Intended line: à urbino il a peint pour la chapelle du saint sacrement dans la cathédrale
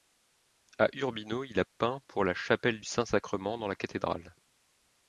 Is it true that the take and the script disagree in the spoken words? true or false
true